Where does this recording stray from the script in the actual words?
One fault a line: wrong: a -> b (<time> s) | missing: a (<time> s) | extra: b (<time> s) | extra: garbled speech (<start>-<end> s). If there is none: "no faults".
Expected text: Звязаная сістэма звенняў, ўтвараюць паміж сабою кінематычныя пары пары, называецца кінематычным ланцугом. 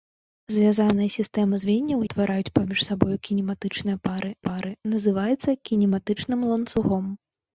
no faults